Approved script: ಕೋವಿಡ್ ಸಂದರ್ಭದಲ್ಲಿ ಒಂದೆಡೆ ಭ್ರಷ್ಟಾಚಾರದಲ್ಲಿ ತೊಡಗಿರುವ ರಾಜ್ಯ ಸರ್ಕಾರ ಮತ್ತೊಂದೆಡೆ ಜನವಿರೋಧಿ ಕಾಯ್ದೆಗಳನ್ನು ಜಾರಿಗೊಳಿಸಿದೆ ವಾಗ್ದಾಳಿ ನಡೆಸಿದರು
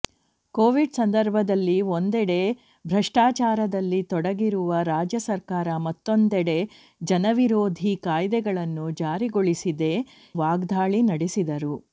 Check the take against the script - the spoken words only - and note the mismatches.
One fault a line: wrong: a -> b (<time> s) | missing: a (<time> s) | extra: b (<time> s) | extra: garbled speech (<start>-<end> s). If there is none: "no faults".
no faults